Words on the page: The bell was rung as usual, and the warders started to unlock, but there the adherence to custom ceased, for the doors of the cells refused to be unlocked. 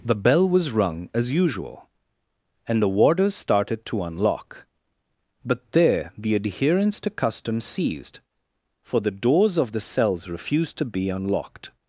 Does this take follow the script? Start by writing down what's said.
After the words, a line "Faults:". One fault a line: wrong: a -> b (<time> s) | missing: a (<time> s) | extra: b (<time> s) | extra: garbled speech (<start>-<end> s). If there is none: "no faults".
The bell was rung as usual, and the warders started to unlock, but there the adherence to custom ceased, for the doors of the cells refused to be unlocked.
Faults:
no faults